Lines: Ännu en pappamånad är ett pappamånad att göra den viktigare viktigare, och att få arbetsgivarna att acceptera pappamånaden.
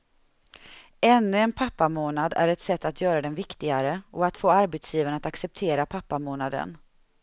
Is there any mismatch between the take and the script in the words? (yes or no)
yes